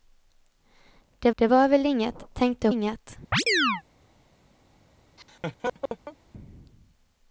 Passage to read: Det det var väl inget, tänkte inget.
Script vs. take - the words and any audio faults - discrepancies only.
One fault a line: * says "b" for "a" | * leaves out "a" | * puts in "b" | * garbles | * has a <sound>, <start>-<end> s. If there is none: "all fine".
* has a chirp, 3.3-3.8 s
* has a laugh, 5.2-6.2 s